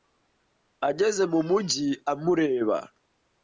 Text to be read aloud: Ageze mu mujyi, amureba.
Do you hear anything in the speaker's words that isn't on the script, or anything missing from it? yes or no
no